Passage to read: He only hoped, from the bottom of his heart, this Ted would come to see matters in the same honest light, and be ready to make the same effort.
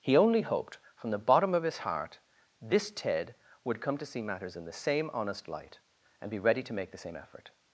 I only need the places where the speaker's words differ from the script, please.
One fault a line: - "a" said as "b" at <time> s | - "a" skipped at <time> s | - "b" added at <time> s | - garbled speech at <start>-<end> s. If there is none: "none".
none